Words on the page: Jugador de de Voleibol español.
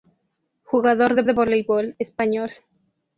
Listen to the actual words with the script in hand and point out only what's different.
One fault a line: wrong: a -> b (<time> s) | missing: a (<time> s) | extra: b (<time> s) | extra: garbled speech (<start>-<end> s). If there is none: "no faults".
no faults